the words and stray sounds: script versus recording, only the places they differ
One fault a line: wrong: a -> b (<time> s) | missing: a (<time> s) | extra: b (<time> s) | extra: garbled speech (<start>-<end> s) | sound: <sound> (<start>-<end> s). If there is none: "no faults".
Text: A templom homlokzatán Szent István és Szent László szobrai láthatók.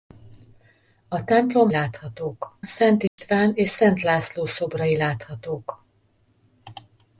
wrong: homlokzatán -> láthatók (1.7 s)
sound: dropout (3.1-3.2 s)